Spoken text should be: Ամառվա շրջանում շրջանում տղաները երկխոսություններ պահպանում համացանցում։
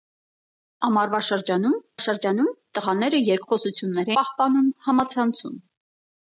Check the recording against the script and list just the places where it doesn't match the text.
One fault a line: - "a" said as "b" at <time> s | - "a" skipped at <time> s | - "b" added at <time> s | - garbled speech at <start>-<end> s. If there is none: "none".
none